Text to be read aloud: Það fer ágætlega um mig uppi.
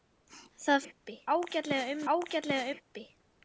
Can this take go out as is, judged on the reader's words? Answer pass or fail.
fail